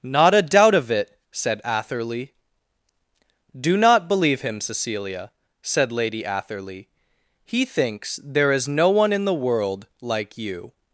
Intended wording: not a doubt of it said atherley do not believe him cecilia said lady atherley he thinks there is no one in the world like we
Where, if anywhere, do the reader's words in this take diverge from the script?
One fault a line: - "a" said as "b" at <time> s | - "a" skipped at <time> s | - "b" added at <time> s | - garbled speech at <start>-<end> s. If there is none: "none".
- "we" said as "you" at 10.4 s